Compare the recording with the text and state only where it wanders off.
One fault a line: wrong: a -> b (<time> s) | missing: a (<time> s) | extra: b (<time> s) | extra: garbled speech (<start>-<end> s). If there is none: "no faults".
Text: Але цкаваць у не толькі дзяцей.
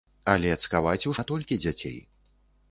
no faults